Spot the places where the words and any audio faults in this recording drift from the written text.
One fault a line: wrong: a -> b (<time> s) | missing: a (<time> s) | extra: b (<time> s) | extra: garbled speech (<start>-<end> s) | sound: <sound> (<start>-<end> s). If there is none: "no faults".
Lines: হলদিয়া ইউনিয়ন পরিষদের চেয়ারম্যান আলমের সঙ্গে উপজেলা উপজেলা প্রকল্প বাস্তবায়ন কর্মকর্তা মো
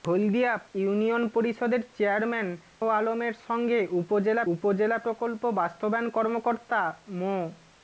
no faults